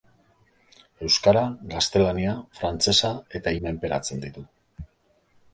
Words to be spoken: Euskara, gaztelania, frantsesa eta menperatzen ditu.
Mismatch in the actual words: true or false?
false